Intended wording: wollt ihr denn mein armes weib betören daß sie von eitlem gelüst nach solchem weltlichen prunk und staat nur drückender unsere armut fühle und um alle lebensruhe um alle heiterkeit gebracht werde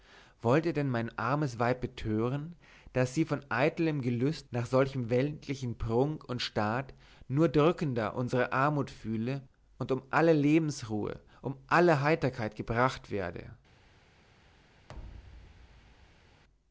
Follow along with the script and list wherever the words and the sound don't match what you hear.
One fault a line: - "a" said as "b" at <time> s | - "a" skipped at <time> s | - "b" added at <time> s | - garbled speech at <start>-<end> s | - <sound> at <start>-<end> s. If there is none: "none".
- thud at 14.9-16.4 s